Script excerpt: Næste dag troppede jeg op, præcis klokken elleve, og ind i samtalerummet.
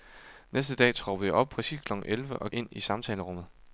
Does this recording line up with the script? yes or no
yes